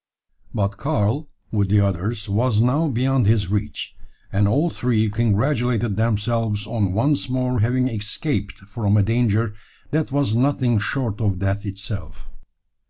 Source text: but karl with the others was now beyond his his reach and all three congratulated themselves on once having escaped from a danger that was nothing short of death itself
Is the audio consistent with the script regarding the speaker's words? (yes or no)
no